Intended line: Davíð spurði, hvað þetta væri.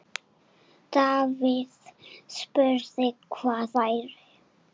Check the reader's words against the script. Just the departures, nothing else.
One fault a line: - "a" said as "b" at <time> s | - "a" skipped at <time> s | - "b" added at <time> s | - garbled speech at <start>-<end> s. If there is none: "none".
- "þetta" skipped at 3.7 s